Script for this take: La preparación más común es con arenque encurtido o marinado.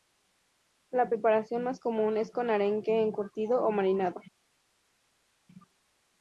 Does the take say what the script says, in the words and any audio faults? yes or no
yes